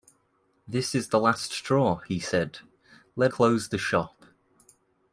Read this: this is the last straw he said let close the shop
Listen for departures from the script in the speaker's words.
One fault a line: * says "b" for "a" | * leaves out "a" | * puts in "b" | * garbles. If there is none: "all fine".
all fine